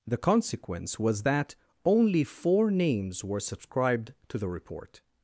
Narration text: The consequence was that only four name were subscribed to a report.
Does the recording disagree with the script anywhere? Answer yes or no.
yes